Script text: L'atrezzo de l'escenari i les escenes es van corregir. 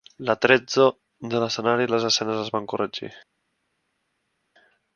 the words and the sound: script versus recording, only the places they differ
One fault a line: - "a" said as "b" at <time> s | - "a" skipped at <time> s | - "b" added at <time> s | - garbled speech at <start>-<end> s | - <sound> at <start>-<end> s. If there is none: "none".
none